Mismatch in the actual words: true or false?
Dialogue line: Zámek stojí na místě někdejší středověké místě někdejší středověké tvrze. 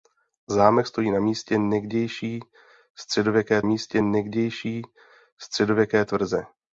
false